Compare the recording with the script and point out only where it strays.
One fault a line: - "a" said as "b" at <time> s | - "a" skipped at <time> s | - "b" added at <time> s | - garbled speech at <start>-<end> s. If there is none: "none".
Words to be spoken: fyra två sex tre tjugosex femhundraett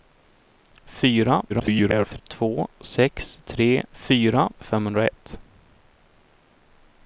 - garbled speech at 1.5-2.2 s
- "tjugosex" said as "fyra" at 3.9 s